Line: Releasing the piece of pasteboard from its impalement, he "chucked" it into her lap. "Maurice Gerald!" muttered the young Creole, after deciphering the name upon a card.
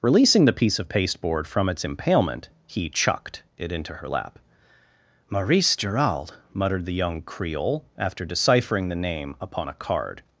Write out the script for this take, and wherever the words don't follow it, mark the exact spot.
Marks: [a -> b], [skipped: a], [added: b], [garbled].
Releasing the piece of pasteboard from its impalement, he "chucked" it into her lap. "Maurice Gerald!" muttered the young Creole, after deciphering the name upon a card.